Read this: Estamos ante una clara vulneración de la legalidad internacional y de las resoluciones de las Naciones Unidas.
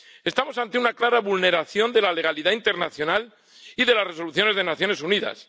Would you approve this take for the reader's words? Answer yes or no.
yes